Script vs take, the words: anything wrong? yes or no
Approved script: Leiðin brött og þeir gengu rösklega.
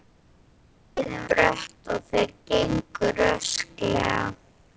no